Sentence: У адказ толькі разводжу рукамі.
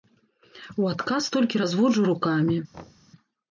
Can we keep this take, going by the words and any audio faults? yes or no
no